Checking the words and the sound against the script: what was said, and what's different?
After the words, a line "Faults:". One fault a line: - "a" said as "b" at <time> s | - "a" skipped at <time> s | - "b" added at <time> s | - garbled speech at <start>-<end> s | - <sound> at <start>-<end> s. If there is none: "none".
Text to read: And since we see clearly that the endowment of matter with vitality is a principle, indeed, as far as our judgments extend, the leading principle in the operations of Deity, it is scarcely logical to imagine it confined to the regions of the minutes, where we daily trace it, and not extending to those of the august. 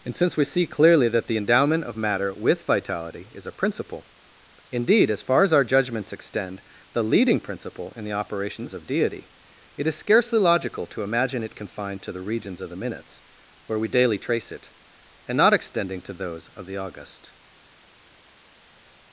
And since we see clearly that the endowment of matter with vitality is a principle, indeed, as far as our judgments extend, the leading principle in the operations of Deity, it is scarcely logical to imagine it confined to the regions of the minutes, where we daily trace it, and not extending to those of the august.
Faults:
none